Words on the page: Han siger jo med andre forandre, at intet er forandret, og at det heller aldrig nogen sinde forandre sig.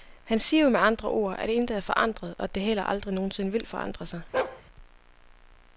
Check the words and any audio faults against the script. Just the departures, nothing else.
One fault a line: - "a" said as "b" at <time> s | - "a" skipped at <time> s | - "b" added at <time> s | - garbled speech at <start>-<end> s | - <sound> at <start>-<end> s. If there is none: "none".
- "forandre" said as "ord" at 1.1 s
- "vil" added at 3.5 s
- bark at 4.3-4.6 s